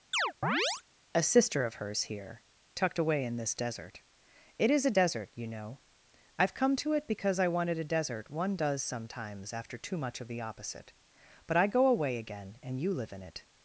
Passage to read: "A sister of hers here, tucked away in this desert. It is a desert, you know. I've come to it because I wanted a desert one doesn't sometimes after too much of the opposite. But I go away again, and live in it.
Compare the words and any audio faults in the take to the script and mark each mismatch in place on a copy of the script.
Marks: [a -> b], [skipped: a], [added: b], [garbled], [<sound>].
[chirp] "A sister of hers here, tucked away in this desert. It is a desert, you know. I've come to it because I wanted a desert one [doesn't -> does] sometimes after too much of the opposite. But I go away again, and [added: you] live in it.